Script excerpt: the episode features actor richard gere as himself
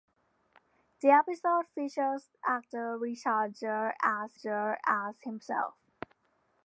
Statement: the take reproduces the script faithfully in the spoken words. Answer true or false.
false